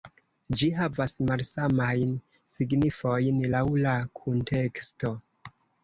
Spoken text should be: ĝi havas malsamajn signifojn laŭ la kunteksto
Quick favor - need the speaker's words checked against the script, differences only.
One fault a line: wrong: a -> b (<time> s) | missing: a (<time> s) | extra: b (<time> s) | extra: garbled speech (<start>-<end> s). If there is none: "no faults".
no faults